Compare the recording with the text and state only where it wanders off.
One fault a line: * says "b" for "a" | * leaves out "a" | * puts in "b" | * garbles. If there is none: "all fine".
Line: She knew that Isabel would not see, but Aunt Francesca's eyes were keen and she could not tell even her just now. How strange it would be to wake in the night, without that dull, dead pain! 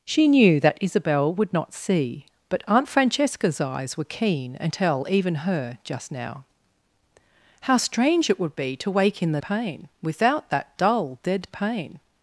* leaves out "she could not"
* says "pain" for "night"